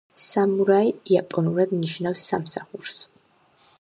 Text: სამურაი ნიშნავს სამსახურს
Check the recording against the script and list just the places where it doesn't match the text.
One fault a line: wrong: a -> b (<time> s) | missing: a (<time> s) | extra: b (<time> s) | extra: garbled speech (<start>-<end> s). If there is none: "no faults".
extra: იაპონურად (1.1 s)